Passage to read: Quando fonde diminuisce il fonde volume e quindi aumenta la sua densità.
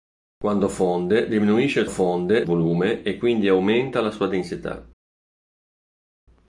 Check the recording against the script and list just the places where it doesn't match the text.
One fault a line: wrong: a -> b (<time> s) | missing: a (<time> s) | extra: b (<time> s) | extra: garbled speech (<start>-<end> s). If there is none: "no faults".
no faults